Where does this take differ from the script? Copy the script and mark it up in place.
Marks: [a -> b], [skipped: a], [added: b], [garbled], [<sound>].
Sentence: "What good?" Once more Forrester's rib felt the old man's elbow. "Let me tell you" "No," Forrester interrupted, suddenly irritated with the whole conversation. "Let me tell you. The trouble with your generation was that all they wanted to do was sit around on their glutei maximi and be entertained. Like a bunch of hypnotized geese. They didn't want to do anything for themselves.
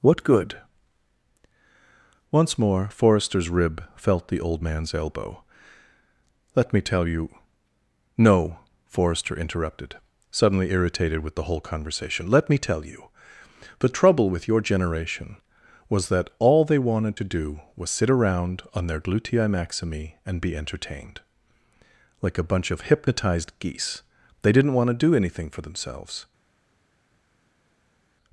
"What good?" Once more Forrester's rib felt the old man's elbow. "Let me tell you" "No," Forrester interrupted, suddenly irritated with the whole conversation. "Let me tell you. The trouble with your generation was that all they wanted to do was sit around on their glutei maximi and be entertained. Like a bunch of hypnotized geese. They didn't want to do anything for themselves.